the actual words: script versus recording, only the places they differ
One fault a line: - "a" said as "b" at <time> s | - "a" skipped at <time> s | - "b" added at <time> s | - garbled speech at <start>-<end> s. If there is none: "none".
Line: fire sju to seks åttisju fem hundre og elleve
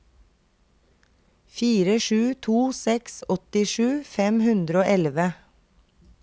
none